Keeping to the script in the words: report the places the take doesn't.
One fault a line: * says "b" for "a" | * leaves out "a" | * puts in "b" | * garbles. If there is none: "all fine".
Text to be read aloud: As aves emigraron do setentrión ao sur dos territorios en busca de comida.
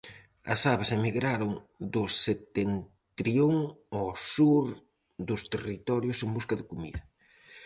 all fine